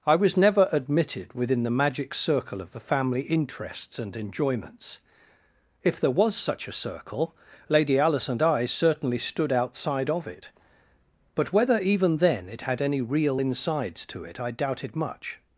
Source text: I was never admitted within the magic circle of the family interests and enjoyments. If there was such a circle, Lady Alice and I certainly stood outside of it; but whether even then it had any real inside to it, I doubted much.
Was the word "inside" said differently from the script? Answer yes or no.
yes